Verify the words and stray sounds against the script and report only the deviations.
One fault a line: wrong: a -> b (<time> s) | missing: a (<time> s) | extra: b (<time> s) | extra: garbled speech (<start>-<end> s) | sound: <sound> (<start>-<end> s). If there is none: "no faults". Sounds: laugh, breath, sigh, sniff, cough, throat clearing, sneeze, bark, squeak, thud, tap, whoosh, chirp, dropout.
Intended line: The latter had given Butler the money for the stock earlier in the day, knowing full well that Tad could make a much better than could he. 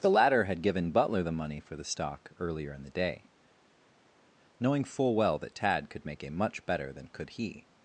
no faults